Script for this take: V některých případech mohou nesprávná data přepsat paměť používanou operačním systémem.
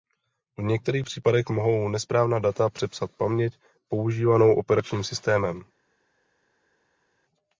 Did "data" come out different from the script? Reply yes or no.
no